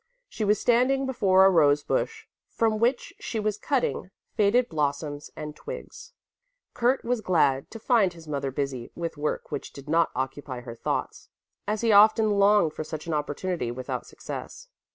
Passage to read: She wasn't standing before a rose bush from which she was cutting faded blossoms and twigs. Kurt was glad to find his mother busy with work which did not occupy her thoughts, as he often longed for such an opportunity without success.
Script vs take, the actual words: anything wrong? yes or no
yes